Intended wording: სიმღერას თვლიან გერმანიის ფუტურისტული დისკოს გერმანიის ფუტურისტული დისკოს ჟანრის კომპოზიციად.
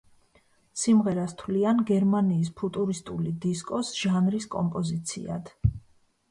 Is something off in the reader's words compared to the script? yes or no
yes